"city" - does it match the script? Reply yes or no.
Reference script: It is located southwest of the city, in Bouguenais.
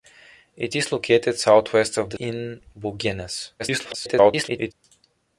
no